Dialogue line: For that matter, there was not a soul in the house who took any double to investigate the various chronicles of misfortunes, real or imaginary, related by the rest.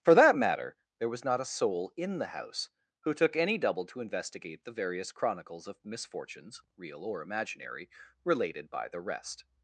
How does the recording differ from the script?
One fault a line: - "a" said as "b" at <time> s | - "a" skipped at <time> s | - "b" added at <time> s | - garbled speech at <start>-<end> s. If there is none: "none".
none